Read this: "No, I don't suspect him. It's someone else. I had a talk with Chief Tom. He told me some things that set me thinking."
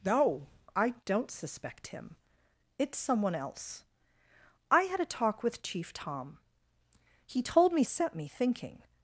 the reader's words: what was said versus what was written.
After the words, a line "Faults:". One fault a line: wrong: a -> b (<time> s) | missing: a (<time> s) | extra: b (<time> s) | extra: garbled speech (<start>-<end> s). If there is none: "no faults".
"No, I don't suspect him. It's someone else. I had a talk with Chief Tom. He told me set me thinking."
Faults:
missing: some things that (7.8 s)